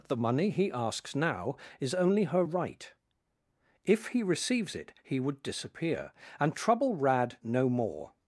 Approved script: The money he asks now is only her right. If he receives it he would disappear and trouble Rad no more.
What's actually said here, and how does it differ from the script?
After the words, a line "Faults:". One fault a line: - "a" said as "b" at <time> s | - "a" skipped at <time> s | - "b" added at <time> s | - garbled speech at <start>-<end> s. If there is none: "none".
The money he asks now is only her right. If he receives it he would disappear and trouble Rad no more.
Faults:
none